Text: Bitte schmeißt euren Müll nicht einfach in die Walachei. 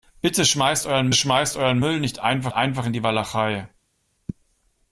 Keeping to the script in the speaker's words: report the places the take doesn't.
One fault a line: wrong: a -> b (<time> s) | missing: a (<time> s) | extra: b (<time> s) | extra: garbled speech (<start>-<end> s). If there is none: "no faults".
extra: schmeißt euren (1.1 s)
extra: einfach (2.5 s)